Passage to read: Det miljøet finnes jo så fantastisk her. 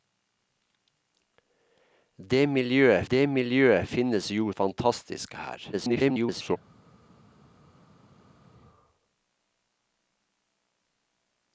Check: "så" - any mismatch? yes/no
yes